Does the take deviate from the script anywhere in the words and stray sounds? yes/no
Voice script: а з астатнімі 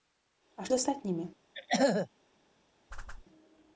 yes